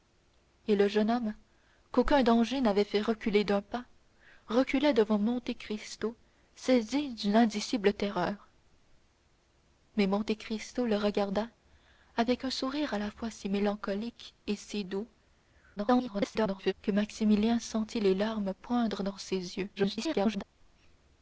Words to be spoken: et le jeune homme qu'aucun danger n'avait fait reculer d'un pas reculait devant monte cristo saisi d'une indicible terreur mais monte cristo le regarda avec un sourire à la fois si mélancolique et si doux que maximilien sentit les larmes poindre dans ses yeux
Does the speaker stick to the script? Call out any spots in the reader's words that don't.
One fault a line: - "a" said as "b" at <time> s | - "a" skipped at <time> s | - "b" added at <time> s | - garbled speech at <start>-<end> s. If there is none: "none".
- garbled speech at 15.8-16.7 s
- garbled speech at 19.8-20.4 s